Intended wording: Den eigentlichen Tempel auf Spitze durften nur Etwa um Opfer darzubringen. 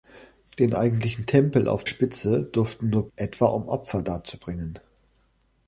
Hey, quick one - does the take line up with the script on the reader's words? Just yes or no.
yes